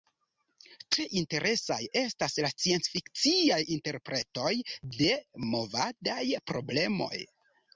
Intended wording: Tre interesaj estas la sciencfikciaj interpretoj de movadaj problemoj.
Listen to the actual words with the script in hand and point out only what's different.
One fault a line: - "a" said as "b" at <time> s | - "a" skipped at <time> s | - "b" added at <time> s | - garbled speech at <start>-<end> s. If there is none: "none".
none